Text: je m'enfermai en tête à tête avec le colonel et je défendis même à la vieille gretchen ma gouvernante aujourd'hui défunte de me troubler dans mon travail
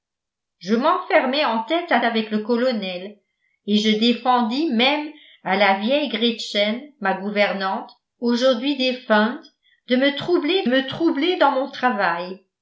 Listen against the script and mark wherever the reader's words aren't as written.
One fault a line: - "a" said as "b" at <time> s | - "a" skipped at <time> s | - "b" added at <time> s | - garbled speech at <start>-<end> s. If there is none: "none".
- "tête" skipped at 2.0 s
- "me troubler" added at 10.7 s